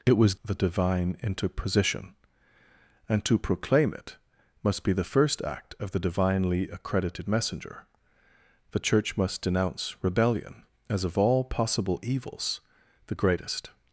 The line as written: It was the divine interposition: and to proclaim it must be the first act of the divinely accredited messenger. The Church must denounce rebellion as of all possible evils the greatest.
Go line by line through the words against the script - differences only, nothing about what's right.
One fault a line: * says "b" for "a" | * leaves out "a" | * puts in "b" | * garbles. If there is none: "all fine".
all fine